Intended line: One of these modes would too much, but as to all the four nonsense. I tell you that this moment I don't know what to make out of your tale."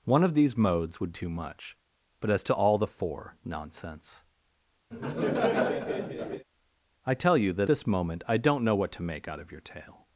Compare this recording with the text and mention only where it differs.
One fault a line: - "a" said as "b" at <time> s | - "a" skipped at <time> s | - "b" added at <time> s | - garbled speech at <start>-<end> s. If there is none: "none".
none